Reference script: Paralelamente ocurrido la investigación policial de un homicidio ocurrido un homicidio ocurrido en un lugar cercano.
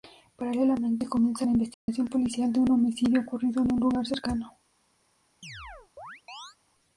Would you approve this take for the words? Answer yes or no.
no